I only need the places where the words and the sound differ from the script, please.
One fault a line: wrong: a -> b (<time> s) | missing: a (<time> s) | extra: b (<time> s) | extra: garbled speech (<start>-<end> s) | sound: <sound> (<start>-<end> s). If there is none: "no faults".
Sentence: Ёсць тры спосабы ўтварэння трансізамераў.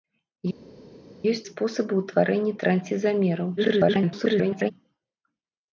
missing: тры (1.4 s)
extra: garbled speech (3.6-4.7 s)